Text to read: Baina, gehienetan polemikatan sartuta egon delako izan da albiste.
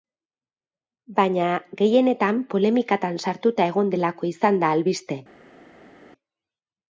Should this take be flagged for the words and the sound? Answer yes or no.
no